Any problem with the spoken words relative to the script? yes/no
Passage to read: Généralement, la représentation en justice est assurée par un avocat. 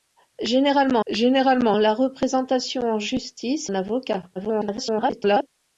yes